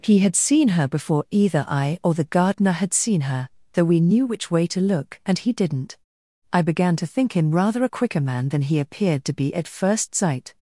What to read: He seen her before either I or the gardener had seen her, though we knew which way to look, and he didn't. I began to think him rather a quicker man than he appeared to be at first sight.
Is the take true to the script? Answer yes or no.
no